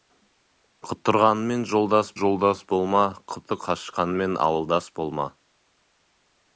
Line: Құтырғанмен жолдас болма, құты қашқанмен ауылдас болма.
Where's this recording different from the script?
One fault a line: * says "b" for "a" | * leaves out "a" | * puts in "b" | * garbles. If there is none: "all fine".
* puts in "жолдас"